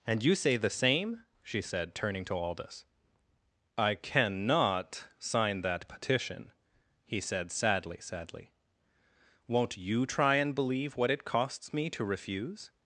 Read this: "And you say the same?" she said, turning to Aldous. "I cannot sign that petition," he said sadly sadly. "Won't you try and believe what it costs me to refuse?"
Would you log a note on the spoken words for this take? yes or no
no